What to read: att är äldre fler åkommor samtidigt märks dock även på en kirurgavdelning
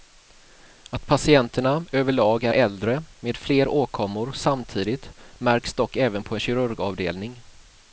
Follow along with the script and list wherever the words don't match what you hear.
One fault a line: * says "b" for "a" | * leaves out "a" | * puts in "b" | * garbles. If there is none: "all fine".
* puts in "patienterna överlag"
* puts in "med"